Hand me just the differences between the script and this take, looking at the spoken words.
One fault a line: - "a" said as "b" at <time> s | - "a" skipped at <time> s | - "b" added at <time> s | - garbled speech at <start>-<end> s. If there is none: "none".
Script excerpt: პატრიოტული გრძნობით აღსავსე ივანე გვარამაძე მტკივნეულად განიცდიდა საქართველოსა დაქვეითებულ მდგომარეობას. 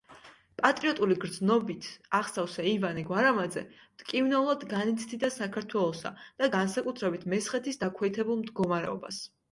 - "და განსაკუთრებით მესხეთის" added at 6.2 s